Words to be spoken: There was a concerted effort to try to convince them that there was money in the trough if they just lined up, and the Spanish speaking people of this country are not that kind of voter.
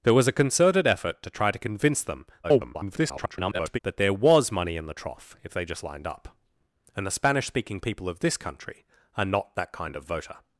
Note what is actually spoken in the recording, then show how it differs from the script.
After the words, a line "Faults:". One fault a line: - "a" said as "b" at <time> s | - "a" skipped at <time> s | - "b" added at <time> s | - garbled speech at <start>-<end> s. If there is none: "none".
There was a concerted effort to try to convince them [garbled] that there was money in the trough if they just lined up, and the Spanish speaking people of this country are not that kind of voter.
Faults:
- garbled speech at 2.4-3.8 s